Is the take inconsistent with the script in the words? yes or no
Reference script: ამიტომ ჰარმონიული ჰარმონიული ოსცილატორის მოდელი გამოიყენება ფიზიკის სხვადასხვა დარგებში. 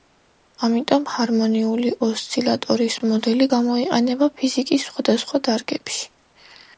yes